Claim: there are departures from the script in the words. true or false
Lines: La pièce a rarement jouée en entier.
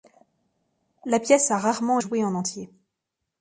false